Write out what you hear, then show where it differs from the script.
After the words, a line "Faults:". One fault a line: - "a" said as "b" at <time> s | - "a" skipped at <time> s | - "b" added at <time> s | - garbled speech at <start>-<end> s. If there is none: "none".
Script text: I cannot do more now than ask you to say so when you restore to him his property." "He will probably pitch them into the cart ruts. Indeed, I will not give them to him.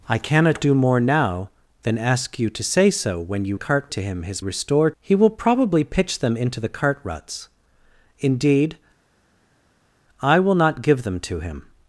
I cannot do more now than ask you to say so when you cart to him his restore." "He will probably pitch them into the cart ruts. Indeed, I will not give them to him.
Faults:
- "restore" said as "cart" at 3.5 s
- "property" said as "restore" at 4.4 s